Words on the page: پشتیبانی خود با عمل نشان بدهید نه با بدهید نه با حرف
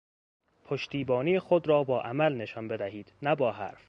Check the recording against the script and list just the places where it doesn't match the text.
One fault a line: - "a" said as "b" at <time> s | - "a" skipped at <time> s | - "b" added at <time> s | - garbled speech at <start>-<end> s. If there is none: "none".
- "را" added at 1.7 s
- "بدهید نه با" skipped at 3.5 s